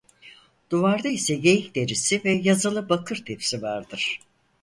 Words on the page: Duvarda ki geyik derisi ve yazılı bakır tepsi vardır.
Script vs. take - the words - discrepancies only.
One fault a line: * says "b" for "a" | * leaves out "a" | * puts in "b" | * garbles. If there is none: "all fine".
* says "ise" for "ki"